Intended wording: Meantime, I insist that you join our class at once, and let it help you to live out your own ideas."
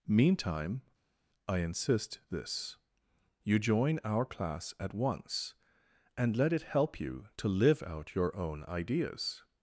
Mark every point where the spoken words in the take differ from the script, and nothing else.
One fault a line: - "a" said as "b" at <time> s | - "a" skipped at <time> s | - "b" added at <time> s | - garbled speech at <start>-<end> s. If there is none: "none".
- "that" said as "this" at 2.3 s